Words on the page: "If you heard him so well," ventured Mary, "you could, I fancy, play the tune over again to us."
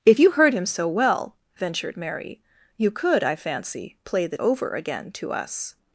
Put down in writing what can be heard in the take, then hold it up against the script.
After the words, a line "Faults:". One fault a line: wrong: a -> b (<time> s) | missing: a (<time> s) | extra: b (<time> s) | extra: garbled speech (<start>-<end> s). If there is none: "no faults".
"If you heard him so well," ventured Mary, "you could, I fancy, play the over again to us."
Faults:
missing: tune (4.4 s)